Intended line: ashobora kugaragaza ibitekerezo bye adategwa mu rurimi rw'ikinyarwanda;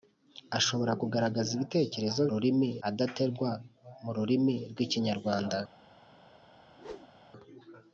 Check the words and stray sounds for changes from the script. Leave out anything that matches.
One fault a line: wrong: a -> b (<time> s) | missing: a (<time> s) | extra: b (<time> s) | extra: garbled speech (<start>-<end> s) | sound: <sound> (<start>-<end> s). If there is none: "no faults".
wrong: bye -> rurimi (2.3 s)
sound: whoosh (6.6-7.2 s)